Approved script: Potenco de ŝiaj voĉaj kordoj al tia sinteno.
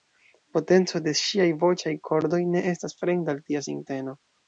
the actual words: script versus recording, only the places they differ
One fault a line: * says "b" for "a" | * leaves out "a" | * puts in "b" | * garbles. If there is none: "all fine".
* puts in "ne estas fremda"